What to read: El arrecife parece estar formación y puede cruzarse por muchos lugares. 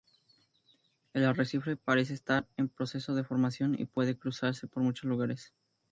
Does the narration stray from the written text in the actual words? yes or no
yes